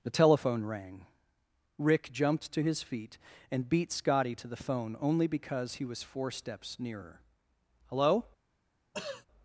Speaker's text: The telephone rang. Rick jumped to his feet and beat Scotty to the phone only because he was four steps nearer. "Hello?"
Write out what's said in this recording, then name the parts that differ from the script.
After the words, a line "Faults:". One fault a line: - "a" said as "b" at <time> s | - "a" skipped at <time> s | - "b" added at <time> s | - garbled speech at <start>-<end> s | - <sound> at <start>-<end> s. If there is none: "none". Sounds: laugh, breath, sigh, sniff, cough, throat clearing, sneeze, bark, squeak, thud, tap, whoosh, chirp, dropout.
The telephone rang. Rick jumped to his feet and beat Scotty to the phone only because he was four steps nearer. "Hello?"
Faults:
- throat clearing at 8.9-9.3 s